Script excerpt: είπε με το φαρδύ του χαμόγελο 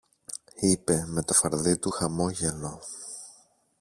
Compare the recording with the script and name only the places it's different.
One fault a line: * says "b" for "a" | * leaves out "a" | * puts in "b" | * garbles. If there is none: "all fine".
all fine